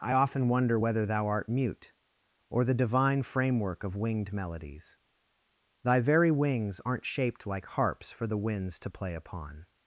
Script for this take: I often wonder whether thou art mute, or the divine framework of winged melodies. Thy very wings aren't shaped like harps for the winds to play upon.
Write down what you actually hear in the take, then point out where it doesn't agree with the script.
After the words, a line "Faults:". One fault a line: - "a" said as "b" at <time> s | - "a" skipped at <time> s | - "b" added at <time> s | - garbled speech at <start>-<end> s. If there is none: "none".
I often wonder whether thou art mute, or the divine framework of winged melodies. Thy very wings aren't shaped like harps for the winds to play upon.
Faults:
none